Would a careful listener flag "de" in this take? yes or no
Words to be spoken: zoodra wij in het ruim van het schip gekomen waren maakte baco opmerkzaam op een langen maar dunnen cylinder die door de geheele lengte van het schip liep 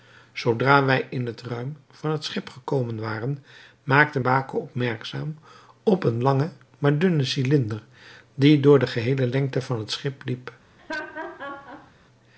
no